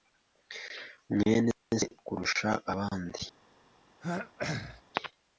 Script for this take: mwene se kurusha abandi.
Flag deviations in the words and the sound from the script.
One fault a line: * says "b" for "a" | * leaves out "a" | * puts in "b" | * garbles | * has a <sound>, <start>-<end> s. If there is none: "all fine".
* has a throat clearing, 4.0-4.8 s